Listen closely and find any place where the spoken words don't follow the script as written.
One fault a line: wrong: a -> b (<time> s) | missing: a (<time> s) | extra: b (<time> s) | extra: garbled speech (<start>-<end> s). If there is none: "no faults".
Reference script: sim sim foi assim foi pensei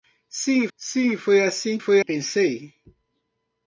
no faults